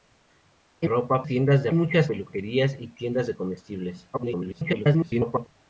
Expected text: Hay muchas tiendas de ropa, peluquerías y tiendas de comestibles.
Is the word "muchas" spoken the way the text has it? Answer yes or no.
no